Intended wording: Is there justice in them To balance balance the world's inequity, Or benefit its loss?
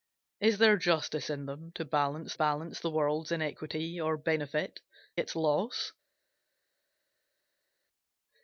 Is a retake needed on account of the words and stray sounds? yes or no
no